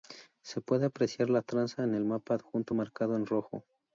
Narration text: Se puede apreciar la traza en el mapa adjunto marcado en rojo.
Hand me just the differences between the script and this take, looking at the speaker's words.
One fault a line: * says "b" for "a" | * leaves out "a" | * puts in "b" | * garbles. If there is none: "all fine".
all fine